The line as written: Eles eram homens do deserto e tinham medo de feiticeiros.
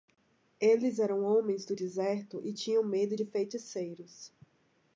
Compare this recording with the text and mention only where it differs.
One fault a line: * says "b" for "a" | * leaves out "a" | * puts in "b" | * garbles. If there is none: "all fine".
all fine